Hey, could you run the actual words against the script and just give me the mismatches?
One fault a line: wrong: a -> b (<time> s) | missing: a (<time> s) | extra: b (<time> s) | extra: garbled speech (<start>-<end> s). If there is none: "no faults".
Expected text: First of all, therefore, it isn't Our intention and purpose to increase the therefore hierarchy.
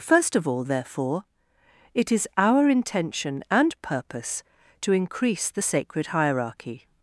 wrong: isn't -> is (2.1 s)
wrong: therefore -> sacred (5.6 s)